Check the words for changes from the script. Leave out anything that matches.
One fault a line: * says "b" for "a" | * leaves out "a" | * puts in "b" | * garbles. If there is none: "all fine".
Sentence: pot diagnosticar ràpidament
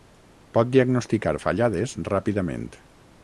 * puts in "fallades"